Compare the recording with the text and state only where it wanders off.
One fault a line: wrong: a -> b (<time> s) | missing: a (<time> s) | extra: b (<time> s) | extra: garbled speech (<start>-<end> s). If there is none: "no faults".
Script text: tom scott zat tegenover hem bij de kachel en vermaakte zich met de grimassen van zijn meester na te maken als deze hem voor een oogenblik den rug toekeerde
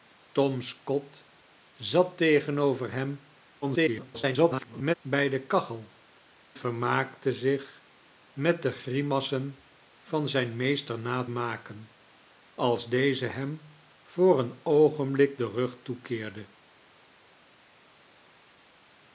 extra: garbled speech (3.6-4.9 s)
missing: en (5.9 s)
missing: te (11.2 s)